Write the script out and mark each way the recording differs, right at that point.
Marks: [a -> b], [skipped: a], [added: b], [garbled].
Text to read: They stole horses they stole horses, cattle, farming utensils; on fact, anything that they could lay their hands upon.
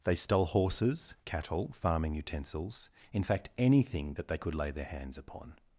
They stole horses [skipped: they stole horses,] cattle, farming utensils; [on -> in] fact, anything that they could lay their hands upon.